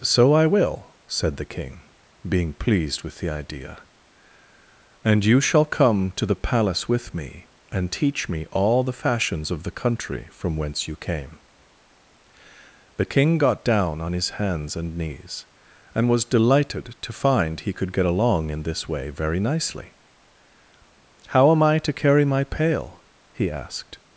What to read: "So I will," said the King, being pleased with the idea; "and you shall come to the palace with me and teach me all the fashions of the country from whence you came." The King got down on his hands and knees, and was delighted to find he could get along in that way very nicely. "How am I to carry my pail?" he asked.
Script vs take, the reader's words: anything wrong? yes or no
yes